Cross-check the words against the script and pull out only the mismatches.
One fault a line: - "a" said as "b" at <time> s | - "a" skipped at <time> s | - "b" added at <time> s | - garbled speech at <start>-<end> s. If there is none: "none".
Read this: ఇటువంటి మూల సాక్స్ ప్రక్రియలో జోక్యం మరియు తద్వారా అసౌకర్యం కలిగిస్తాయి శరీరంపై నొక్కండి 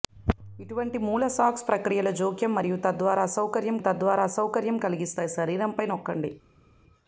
- "తద్వారా అసౌకర్యం" added at 3.8 s